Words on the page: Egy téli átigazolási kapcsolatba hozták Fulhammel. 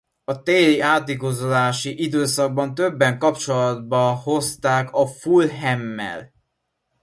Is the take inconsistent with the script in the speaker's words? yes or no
yes